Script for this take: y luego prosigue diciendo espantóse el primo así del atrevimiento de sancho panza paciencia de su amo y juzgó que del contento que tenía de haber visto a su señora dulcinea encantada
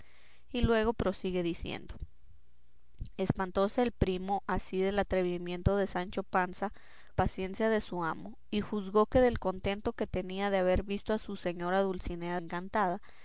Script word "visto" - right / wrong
right